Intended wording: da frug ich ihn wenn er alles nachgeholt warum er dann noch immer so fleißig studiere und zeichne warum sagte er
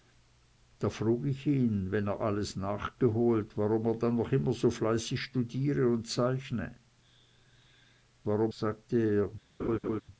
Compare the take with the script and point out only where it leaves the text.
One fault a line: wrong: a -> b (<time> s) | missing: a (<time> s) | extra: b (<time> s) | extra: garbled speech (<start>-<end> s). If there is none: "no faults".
no faults